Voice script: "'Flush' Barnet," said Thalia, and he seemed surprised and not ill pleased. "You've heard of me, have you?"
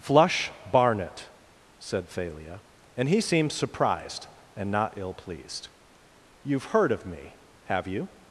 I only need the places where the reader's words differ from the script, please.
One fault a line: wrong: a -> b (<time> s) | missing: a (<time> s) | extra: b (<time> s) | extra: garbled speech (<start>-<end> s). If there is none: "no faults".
no faults